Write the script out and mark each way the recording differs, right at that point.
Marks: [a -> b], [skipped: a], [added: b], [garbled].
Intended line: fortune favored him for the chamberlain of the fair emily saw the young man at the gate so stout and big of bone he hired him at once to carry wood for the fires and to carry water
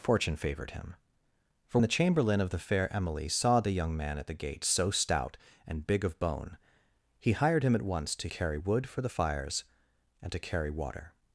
fortune favored him for the chamberlain of the fair emily saw the young man at the gate so stout and big of bone he hired him at once to carry wood for the fires and to carry water